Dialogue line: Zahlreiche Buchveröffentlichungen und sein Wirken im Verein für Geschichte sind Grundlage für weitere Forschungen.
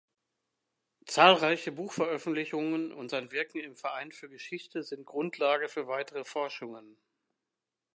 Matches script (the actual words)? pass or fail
pass